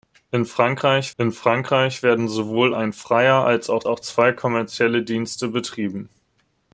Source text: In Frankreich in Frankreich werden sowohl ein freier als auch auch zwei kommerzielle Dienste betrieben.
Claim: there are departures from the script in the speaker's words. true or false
false